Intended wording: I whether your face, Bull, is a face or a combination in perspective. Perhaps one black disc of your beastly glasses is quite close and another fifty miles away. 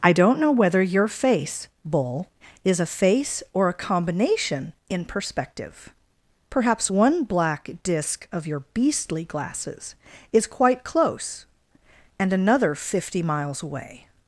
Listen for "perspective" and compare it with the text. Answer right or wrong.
right